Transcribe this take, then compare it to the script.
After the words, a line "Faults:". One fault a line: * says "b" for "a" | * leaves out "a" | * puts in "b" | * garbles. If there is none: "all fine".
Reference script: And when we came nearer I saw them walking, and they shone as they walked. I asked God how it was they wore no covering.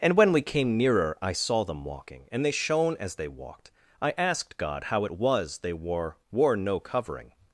And when we came nearer I saw them walking, and they shone as they walked. I asked God how it was they wore wore no covering.
Faults:
* puts in "wore"